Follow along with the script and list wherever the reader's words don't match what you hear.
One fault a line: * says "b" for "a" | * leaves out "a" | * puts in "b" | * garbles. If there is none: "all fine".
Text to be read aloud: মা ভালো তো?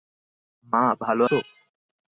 all fine